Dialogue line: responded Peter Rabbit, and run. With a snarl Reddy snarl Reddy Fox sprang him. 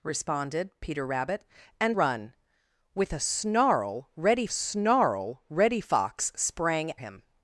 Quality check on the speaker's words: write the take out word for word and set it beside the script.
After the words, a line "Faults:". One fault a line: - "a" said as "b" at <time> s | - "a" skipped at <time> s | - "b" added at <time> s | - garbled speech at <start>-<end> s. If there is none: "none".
responded Peter Rabbit, and run. With a snarl Reddy snarl Reddy Fox sprang him.
Faults:
none